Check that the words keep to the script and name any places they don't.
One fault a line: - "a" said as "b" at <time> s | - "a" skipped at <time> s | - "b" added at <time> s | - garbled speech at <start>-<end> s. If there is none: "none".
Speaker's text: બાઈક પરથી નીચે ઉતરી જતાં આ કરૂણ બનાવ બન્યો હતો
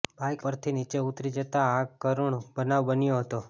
none